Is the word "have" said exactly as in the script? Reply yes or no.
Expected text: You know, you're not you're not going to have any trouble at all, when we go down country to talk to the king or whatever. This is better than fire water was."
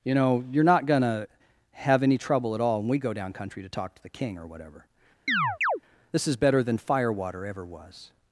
yes